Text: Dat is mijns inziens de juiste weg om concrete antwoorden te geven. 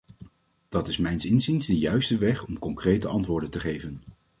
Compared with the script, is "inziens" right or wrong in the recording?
right